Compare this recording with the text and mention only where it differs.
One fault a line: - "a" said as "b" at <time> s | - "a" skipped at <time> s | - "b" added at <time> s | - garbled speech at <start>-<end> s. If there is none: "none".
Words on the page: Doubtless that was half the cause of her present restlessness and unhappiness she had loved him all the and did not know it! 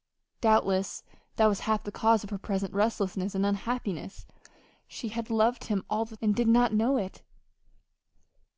none